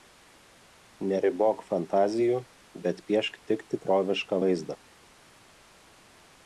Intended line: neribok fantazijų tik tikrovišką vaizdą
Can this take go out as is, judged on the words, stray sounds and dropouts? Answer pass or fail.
fail